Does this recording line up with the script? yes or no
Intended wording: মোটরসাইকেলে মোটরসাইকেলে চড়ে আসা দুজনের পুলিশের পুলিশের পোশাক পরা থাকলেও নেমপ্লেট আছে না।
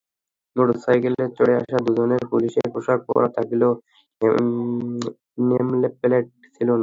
no